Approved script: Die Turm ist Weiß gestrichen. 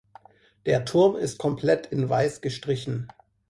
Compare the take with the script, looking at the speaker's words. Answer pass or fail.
fail